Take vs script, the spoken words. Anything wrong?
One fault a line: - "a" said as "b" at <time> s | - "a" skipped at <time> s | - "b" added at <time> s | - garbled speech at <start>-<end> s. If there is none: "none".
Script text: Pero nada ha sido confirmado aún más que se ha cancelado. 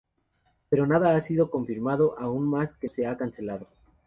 none